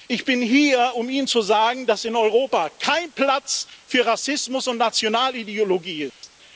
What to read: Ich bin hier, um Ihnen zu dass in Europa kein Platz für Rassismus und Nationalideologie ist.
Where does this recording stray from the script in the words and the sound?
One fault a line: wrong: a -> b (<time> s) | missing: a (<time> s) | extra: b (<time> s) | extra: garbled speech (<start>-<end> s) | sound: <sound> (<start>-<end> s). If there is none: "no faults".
extra: sagen (1.4 s)
sound: dropout (6.1-6.2 s)